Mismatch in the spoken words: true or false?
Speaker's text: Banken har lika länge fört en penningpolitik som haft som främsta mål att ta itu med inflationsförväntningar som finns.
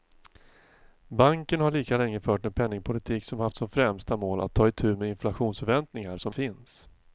false